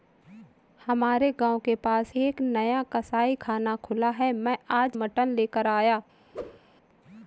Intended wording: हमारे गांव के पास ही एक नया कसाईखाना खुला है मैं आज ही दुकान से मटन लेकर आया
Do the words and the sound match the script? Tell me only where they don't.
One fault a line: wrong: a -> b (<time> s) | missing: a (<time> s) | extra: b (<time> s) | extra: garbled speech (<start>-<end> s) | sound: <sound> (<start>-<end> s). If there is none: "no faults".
missing: ही (2.1 s)
missing: ही दुकान से (5.0 s)
sound: whoosh (6.3-6.6 s)